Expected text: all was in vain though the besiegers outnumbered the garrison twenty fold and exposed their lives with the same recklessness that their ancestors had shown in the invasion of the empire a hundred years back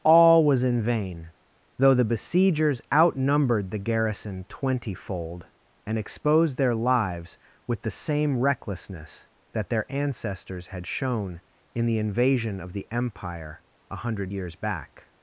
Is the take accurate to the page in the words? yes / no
yes